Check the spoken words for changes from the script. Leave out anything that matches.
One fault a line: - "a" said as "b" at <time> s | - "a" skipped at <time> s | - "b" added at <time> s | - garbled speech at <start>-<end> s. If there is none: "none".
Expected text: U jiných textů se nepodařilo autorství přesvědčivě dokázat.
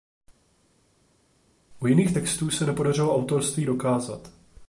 - "přesvědčivě" skipped at 3.7 s